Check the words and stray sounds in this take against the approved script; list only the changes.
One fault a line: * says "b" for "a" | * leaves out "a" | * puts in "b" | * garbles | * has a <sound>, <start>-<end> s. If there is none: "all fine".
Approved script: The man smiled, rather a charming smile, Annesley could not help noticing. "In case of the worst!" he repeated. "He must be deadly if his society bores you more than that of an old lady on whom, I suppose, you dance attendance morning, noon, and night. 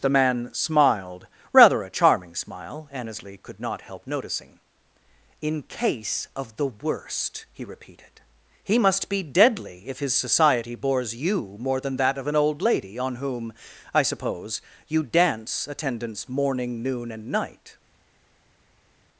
all fine